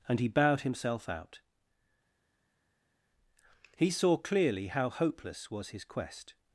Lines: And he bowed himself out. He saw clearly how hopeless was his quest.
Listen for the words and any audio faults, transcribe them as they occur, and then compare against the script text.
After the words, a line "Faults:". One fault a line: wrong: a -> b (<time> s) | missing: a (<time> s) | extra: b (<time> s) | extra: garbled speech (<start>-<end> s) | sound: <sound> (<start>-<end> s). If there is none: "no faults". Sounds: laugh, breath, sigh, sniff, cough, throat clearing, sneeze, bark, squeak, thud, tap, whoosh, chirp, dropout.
And he bowed himself out. He saw clearly how hopeless was his quest.
Faults:
no faults